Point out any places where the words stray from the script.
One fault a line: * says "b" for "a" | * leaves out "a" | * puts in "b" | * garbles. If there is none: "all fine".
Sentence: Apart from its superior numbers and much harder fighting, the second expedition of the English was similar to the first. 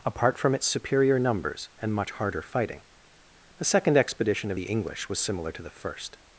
all fine